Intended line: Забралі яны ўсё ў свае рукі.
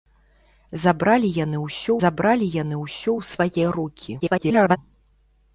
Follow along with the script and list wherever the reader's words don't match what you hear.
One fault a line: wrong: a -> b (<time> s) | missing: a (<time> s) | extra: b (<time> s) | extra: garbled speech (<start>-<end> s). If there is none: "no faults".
extra: забралі яны ўсё (2.0 s)
extra: garbled speech (4.2-4.8 s)